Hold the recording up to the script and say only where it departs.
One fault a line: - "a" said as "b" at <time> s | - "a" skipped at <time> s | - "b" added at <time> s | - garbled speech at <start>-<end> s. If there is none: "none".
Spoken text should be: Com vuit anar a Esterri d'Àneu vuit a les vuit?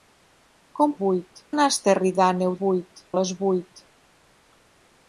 none